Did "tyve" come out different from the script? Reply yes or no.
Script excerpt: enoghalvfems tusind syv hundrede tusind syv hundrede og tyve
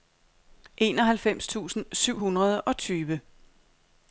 no